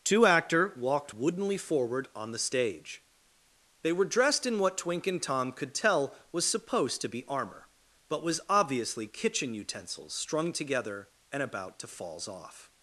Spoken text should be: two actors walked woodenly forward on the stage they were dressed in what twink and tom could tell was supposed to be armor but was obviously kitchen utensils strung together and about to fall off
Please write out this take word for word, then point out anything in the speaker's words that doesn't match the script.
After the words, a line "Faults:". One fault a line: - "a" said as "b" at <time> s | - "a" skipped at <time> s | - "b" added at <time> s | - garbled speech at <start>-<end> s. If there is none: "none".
two actor walked woodenly forward on the stage they were dressed in what twink and tom could tell was supposed to be armor but was obviously kitchen utensils strung together and about to falls off
Faults:
- "actors" said as "actor" at 0.2 s
- "fall" said as "falls" at 11.9 s